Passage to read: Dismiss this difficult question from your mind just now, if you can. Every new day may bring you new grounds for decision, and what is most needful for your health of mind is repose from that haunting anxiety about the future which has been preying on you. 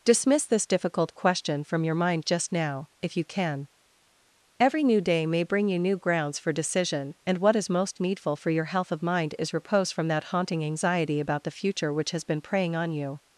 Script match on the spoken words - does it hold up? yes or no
yes